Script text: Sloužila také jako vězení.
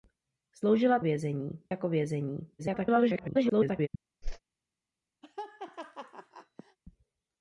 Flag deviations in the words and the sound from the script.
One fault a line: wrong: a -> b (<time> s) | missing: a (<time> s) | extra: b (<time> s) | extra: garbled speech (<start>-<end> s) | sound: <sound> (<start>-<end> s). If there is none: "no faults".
wrong: také -> vězení (1.0 s)
extra: garbled speech (2.6-3.9 s)
sound: whoosh (4.2-4.4 s)
sound: laugh (5.2-6.8 s)